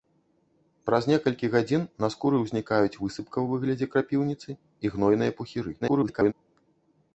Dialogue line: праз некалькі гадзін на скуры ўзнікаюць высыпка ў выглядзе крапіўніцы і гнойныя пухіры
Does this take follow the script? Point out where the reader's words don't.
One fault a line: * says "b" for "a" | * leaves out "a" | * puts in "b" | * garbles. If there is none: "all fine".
* garbles